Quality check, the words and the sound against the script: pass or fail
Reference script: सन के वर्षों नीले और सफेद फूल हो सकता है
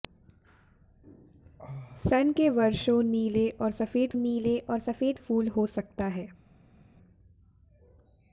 fail